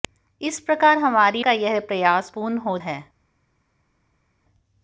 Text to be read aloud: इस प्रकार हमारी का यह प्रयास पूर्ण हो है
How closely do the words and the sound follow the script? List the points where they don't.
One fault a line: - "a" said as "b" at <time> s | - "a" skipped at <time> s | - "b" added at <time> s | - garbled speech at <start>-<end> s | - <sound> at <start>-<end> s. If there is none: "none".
none